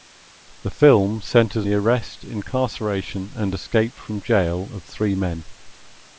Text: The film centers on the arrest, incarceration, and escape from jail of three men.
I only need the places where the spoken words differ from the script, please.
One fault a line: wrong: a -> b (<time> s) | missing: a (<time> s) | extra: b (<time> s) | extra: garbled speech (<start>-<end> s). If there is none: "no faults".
missing: on (1.7 s)